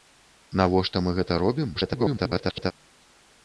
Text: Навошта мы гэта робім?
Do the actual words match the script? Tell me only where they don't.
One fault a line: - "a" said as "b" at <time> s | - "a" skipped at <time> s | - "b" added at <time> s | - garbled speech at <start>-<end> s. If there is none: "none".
- garbled speech at 1.7-2.7 s